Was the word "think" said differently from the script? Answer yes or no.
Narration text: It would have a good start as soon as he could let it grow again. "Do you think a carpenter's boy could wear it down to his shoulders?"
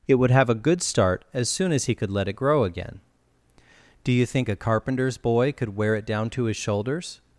no